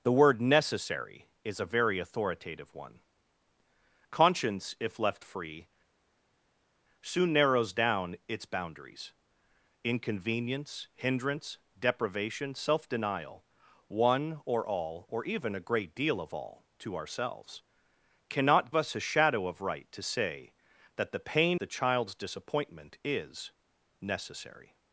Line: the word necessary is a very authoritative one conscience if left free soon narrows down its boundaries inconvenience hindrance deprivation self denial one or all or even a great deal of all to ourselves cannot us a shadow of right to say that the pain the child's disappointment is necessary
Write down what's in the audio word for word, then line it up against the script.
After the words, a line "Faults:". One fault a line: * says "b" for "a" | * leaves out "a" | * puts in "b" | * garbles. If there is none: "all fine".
the word necessary is a very authoritative one conscience if left free soon narrows down its boundaries inconvenience hindrance deprivation self denial one or all or even a great deal of all to ourselves cannot us a shadow of right to say that the pain the child's disappointment is necessary
Faults:
all fine